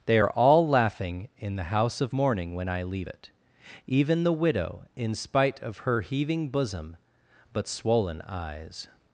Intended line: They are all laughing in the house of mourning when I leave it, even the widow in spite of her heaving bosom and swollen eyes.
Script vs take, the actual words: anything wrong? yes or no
yes